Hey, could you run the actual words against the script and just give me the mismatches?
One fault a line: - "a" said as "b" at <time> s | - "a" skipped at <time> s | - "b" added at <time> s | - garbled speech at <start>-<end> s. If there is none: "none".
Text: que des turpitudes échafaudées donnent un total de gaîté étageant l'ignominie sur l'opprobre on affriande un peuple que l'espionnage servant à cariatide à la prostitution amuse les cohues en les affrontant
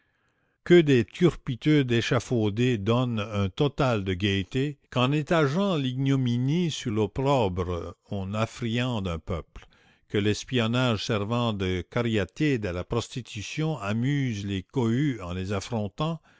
- "qu'en" added at 4.9 s
- "à" said as "de" at 11.5 s